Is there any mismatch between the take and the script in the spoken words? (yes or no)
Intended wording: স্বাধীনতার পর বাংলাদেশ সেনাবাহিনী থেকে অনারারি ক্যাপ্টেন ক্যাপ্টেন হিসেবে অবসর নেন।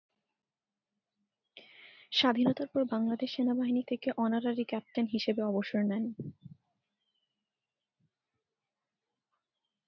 yes